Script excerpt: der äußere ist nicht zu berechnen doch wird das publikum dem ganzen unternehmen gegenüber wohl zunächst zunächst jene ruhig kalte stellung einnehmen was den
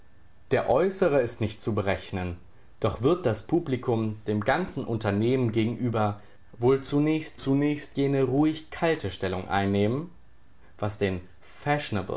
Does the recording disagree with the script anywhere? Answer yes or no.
no